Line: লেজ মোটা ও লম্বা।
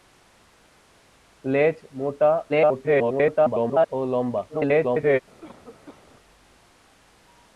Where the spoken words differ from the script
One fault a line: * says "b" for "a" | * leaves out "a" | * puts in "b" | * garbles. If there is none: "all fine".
* garbles
* garbles